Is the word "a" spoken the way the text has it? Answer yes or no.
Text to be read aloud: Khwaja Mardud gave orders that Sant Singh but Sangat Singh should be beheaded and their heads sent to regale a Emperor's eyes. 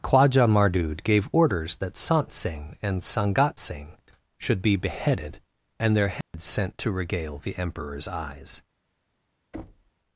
no